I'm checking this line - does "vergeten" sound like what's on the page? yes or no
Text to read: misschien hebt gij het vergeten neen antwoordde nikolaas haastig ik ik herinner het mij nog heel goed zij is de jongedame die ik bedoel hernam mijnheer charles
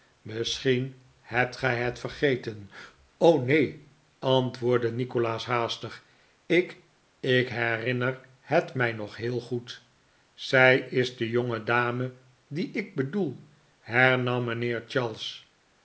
yes